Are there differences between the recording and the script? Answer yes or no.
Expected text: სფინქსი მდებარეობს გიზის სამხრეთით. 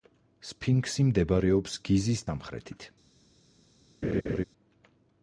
no